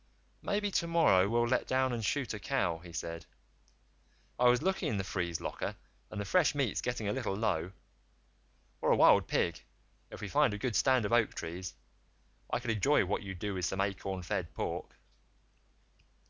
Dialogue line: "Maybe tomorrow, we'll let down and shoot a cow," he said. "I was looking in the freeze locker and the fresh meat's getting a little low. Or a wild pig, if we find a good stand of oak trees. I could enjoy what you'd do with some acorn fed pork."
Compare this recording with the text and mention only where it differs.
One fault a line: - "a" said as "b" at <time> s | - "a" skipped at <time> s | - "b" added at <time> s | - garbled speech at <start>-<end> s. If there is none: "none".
none